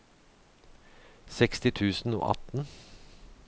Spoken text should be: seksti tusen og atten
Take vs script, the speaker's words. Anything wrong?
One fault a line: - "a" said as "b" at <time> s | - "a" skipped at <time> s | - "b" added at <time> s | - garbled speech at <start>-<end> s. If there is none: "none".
none